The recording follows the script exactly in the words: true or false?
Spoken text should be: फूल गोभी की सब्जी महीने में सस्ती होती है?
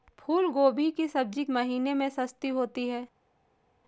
true